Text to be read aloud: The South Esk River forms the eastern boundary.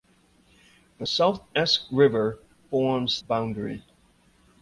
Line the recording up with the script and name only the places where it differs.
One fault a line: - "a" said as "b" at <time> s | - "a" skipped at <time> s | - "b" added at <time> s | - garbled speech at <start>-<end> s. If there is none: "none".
- "the eastern" skipped at 3.2 s